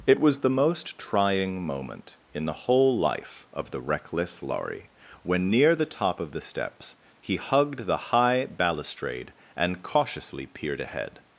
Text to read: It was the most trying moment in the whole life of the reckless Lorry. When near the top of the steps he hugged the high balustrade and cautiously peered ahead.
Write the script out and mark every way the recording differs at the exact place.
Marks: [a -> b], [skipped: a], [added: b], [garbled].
It was the most trying moment in the whole life of the reckless Lorry. When near the top of the steps he hugged the high balustrade and cautiously peered ahead.